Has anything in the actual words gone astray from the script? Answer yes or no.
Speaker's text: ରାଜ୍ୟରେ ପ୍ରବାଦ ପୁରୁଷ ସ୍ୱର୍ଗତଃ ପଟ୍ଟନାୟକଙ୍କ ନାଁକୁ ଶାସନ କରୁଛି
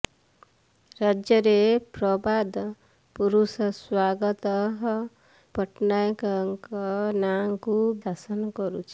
no